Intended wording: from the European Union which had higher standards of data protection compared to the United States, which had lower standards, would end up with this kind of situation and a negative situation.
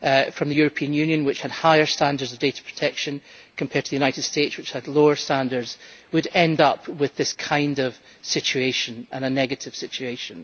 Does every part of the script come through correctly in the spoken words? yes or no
yes